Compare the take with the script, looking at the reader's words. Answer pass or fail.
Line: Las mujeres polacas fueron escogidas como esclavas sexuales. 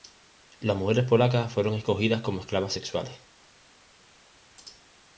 pass